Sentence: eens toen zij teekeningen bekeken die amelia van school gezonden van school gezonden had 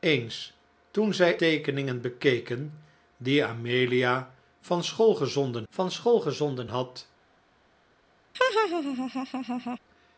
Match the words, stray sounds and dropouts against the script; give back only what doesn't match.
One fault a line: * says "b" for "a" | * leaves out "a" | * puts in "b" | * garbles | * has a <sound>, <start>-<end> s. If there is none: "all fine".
* has a laugh, 8.3-9.8 s